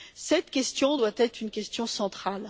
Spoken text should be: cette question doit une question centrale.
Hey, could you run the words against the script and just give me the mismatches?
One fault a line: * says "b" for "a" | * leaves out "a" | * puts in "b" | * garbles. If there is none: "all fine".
* puts in "être"